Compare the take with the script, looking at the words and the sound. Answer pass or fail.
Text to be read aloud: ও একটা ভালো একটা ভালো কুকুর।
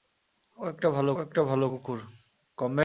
pass